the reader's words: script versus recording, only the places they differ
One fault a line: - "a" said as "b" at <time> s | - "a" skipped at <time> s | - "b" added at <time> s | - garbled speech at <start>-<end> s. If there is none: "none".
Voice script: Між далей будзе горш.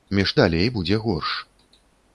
none